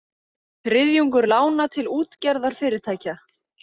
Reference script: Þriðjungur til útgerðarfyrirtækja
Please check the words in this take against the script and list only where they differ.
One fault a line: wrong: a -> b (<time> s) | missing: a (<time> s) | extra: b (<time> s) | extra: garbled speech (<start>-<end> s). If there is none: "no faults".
extra: lána (1.3 s)